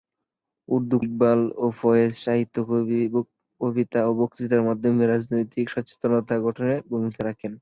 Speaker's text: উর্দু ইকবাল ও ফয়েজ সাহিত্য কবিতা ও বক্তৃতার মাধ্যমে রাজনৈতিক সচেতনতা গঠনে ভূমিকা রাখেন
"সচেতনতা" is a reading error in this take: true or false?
false